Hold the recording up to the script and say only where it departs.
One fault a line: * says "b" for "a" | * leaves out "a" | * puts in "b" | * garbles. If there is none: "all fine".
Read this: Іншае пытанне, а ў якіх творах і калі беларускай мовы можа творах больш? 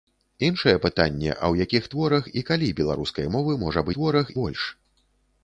all fine